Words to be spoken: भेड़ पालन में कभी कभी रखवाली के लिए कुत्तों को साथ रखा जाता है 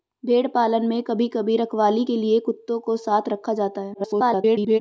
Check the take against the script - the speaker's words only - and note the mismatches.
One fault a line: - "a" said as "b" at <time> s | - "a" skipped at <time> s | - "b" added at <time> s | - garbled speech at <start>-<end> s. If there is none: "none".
- garbled speech at 3.9-4.8 s